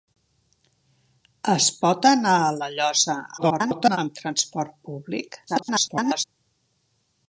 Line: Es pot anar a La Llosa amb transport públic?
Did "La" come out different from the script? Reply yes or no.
no